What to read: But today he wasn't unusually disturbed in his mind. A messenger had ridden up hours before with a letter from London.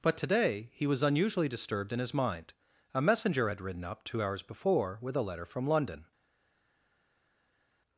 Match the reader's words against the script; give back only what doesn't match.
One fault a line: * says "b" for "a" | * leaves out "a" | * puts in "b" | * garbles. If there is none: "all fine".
* says "was" for "wasn't"
* puts in "two"